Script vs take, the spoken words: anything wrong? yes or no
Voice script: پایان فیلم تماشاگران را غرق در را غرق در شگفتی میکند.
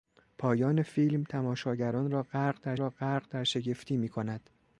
no